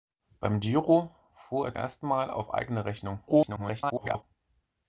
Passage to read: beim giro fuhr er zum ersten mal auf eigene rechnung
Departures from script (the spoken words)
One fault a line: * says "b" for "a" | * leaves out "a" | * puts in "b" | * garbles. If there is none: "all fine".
* leaves out "zum"
* garbles